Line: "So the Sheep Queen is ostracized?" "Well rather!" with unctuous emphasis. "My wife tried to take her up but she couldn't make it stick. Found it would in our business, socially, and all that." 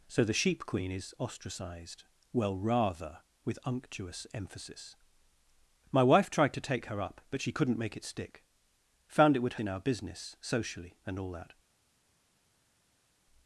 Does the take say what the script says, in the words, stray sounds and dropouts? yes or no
yes